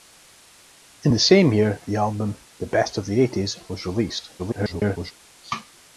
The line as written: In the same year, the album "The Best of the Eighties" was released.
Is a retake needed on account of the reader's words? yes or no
yes